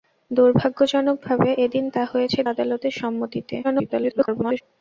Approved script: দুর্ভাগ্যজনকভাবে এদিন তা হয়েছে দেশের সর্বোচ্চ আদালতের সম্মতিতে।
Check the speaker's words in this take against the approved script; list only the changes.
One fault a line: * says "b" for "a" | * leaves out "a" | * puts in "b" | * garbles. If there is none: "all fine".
* leaves out "দেশের সর্বোচ্চ"
* garbles